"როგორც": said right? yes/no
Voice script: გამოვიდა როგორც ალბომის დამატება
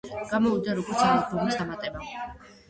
yes